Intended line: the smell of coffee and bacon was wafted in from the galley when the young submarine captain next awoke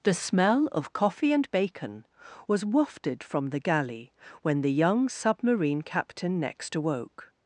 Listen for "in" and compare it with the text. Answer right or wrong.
wrong